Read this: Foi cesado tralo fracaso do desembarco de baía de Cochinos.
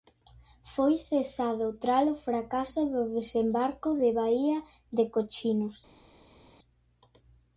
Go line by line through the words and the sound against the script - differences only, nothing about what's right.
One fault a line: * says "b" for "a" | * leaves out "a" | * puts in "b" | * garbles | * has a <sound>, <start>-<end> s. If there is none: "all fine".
all fine